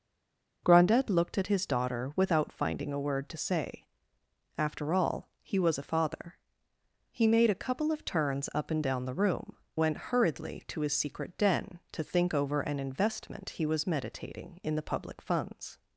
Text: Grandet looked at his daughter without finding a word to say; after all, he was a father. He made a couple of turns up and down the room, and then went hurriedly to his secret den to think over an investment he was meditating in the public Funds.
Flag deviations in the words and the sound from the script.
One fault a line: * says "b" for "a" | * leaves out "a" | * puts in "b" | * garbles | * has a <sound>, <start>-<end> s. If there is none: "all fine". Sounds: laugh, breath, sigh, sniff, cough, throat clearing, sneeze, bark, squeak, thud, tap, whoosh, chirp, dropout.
* leaves out "and then"